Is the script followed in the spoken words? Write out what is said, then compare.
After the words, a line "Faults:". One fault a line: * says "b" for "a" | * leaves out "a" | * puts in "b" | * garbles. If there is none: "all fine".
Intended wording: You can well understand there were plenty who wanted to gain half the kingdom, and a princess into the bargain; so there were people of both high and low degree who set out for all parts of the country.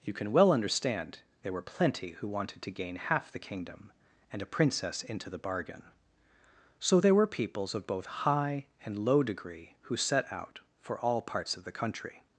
You can well understand there were plenty who wanted to gain half the kingdom, and a princess into the bargain; so there were peoples of both high and low degree who set out for all parts of the country.
Faults:
* says "peoples" for "people"